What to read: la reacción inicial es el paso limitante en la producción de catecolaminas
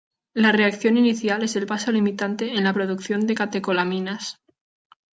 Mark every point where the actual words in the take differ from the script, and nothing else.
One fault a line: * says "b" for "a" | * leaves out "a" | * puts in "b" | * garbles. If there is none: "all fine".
all fine